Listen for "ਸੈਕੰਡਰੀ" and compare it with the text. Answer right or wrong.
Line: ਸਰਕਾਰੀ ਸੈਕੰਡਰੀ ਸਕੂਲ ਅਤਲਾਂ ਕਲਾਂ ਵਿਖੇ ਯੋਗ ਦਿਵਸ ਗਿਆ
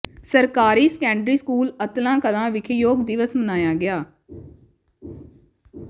right